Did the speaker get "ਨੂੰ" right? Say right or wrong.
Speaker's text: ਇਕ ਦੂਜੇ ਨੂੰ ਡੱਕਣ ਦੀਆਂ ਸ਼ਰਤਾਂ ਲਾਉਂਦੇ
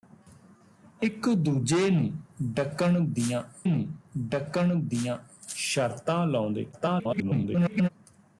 right